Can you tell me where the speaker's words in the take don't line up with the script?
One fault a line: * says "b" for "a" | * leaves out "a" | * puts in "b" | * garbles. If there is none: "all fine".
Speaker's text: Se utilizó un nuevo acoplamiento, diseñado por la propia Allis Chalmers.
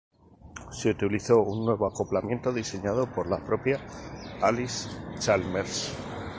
all fine